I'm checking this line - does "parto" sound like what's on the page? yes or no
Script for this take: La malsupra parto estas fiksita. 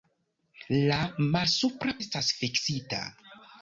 no